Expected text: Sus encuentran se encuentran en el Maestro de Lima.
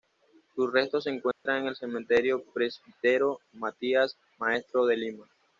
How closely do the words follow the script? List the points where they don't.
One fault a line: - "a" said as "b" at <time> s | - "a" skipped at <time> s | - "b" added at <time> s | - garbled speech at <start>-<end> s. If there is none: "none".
- "encuentran" said as "restos" at 0.7 s
- "Cementerio Presbítero Matías" added at 1.8 s